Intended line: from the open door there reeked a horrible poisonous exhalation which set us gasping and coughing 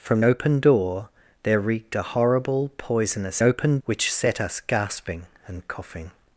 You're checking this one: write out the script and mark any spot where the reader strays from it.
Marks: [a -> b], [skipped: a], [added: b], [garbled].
from [skipped: the] open door there reeked a horrible poisonous [exhalation -> open] which set us gasping and coughing